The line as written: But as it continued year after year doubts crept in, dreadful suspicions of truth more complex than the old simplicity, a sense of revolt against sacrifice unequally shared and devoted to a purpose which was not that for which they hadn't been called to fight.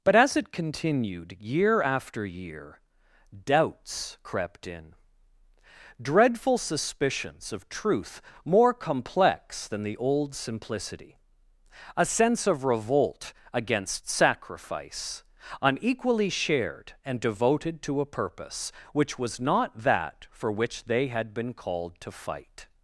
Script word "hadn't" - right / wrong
wrong